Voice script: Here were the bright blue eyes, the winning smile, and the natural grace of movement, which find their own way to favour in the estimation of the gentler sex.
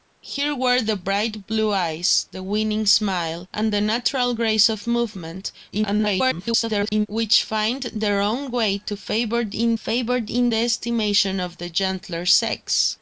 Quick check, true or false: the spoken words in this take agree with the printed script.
false